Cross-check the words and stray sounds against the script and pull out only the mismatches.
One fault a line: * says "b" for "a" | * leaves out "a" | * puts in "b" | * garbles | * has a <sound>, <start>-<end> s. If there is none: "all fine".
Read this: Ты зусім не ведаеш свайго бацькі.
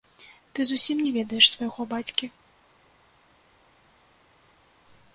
all fine